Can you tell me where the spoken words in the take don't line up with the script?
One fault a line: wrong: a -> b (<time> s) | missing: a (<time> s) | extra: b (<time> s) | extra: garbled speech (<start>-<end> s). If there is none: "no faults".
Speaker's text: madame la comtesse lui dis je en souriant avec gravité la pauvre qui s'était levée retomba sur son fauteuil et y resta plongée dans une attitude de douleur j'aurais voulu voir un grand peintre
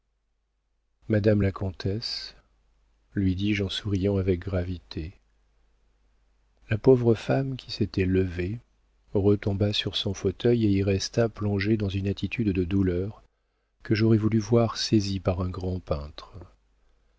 extra: femme (7.2 s)
extra: que (13.8 s)
extra: saisie par (14.8 s)